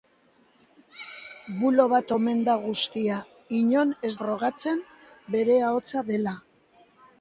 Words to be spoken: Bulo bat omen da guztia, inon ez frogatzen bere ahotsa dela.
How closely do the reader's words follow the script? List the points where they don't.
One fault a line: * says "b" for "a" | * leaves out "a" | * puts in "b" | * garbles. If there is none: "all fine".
all fine